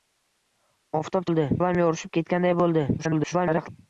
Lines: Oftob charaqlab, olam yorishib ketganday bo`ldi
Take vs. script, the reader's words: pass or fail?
fail